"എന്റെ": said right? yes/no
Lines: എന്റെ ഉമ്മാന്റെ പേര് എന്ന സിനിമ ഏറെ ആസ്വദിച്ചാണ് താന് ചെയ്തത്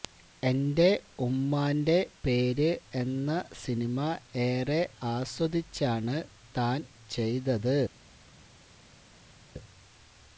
yes